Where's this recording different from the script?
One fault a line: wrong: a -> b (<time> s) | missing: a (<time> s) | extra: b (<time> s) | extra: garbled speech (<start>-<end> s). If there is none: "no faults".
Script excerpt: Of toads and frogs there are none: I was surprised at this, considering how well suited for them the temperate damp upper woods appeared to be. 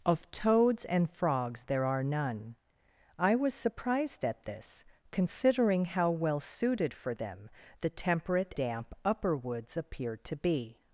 no faults